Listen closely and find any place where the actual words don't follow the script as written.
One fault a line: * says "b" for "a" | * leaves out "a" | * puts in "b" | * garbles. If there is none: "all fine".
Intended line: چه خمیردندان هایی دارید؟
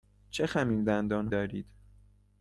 * leaves out "هایی"